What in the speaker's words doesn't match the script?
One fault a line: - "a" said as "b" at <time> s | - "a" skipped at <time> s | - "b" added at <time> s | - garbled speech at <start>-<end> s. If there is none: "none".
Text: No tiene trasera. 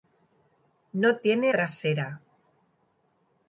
none